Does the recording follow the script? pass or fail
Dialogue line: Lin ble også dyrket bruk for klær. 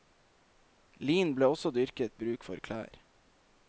pass